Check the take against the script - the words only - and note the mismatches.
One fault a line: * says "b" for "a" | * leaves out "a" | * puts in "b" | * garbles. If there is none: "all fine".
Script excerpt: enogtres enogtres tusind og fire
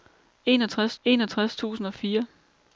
all fine